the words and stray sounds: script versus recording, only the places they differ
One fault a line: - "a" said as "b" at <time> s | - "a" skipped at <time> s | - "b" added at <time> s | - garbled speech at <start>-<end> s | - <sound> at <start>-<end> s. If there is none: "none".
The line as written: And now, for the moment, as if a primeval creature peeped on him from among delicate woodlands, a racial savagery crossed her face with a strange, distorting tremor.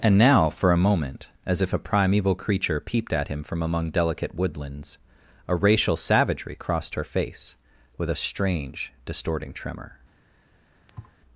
- "the" said as "a" at 0.7 s
- "on" said as "at" at 3.1 s
- thud at 10.9-11.2 s